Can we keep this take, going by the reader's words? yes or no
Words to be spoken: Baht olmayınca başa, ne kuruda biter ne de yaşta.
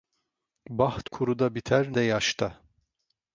no